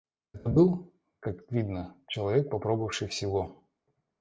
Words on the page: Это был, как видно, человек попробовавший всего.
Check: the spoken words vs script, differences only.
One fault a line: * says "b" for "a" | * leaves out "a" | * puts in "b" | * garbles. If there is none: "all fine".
all fine